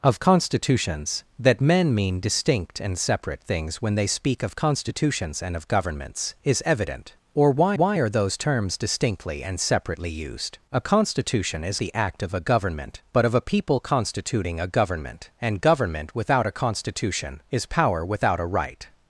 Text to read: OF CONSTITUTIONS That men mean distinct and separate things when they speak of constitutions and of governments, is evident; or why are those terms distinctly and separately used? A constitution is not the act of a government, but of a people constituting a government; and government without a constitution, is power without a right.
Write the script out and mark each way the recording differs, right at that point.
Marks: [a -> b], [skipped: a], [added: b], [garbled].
OF CONSTITUTIONS That men mean distinct and separate things when they speak of constitutions and of governments, is evident; or why [added: why] are those terms distinctly and separately used? A constitution is [skipped: not] the act of a government, but of a people constituting a government; and government without a constitution, is power without a right.